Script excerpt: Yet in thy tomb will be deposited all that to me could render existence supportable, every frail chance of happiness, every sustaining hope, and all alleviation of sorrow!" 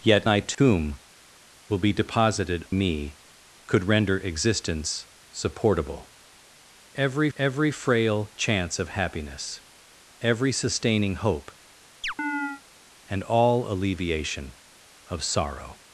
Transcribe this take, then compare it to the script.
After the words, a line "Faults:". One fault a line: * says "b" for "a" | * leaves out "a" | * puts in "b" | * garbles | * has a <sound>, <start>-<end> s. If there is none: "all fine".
Yet thy tomb will be deposited me could render existence supportable, every every frail chance of happiness, every sustaining hope, and all alleviation of sorrow!"
Faults:
* leaves out "in"
* has a dropout, 0.5-0.6 s
* leaves out "all that to"
* puts in "every"
* has a chirp, 12.0-12.6 s